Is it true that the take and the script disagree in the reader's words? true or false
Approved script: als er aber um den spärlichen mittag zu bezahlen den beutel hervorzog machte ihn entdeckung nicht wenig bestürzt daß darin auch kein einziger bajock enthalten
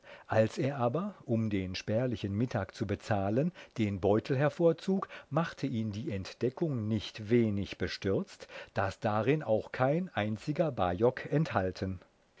true